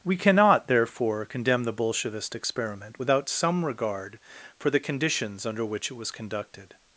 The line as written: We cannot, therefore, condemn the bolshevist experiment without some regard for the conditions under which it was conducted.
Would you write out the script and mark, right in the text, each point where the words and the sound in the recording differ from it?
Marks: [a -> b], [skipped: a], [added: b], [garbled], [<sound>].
We cannot, therefore, condemn the bolshevist experiment without some regard for the conditions under which it was conducted.